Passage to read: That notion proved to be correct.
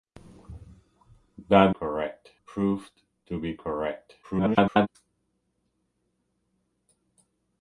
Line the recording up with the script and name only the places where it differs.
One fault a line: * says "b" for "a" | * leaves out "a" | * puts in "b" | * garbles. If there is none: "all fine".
* says "correct" for "notion"
* garbles